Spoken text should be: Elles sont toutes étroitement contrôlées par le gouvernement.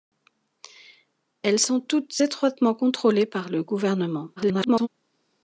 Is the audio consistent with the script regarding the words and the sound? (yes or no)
no